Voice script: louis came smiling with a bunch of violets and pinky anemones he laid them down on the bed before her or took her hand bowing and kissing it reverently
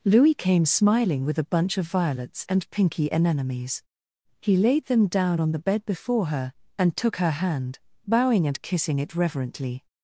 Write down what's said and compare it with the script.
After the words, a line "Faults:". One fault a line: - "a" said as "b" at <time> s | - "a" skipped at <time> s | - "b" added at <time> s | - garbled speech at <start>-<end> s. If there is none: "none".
louis came smiling with a bunch of violets and pinky anemones he laid them down on the bed before her and took her hand bowing and kissing it reverently
Faults:
- "or" said as "and" at 6.8 s